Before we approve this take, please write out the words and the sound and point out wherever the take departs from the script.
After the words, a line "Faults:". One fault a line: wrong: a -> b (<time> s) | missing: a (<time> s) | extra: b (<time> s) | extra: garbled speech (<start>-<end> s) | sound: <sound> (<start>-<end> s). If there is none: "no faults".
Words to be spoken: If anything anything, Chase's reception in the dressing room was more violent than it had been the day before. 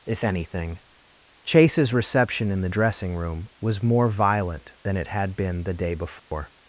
If anything, Chase's reception in the dressing room was more violent than it had been the day before.
Faults:
missing: anything (0.8 s)
sound: dropout (6.2-6.3 s)